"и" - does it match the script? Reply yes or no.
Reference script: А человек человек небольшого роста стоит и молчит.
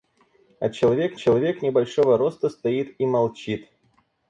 yes